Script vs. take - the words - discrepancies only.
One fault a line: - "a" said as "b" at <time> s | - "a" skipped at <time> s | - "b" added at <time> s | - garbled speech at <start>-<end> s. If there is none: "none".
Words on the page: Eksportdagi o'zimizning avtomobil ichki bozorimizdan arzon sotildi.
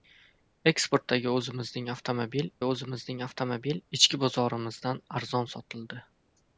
- "o'zimizning avtomobil" added at 2.7 s